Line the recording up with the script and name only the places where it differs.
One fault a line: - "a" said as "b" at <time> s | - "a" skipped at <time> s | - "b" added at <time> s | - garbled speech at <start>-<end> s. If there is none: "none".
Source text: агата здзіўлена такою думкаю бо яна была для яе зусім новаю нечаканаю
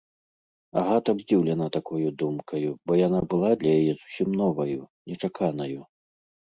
none